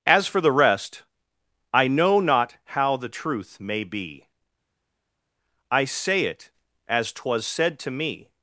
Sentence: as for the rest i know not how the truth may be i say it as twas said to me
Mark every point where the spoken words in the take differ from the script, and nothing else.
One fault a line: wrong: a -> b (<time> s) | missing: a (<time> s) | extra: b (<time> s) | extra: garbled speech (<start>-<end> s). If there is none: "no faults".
no faults